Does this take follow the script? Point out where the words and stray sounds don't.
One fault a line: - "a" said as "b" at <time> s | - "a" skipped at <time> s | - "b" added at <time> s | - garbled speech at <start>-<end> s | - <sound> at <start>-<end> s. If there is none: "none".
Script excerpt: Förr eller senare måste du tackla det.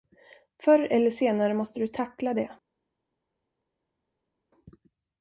none